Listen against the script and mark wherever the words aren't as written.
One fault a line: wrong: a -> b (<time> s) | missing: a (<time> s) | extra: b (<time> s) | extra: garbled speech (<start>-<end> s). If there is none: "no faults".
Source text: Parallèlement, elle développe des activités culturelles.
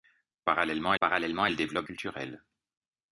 extra: parallèlement (1.0 s)
missing: des activités (1.9 s)